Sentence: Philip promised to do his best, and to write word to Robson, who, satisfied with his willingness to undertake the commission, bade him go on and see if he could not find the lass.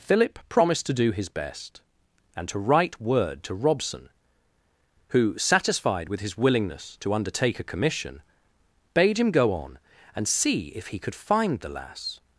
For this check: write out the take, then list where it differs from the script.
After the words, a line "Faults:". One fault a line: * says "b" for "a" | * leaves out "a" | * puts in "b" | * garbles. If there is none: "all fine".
Philip promised to do his best, and to write word to Robson, who, satisfied with his willingness to undertake a commission, bade him go on and see if he could find the lass.
Faults:
* says "a" for "the"
* leaves out "not"